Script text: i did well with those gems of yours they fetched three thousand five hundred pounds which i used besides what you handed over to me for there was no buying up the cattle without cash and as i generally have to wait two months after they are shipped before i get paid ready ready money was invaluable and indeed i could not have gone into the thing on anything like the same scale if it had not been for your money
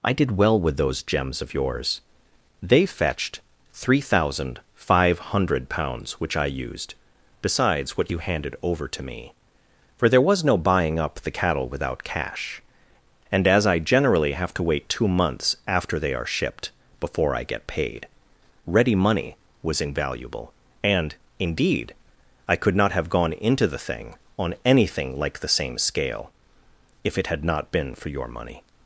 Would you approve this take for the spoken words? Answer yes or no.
no